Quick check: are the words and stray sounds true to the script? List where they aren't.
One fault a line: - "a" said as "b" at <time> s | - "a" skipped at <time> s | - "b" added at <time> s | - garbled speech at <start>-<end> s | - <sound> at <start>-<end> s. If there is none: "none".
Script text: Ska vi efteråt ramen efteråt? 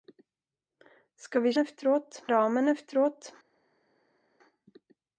none